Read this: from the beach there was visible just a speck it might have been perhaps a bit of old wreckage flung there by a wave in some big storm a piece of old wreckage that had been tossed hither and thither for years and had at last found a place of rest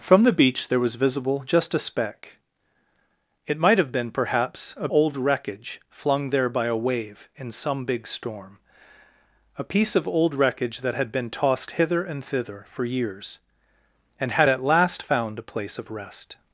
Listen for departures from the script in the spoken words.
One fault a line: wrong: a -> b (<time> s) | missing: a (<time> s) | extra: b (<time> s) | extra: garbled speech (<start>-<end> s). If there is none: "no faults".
missing: bit of (4.9 s)